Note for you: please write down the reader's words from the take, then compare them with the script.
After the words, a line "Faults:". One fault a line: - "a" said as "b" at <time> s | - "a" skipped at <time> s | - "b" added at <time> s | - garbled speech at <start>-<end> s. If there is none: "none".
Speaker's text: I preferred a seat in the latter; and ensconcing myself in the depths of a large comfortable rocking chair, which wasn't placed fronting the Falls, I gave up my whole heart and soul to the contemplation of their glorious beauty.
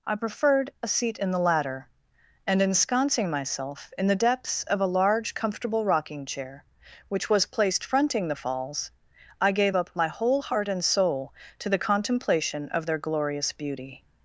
I preferred a seat in the latter; and ensconcing myself in the depths of a large comfortable rocking chair, which was placed fronting the Falls, I gave up my whole heart and soul to the contemplation of their glorious beauty.
Faults:
- "wasn't" said as "was" at 7.3 s